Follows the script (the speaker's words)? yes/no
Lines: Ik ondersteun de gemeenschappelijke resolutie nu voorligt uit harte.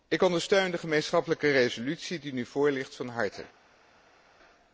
no